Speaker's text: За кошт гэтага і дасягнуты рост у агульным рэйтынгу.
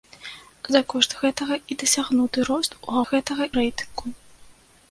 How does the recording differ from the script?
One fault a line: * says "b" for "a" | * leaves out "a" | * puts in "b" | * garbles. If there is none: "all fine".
* says "гэтага" for "агульным"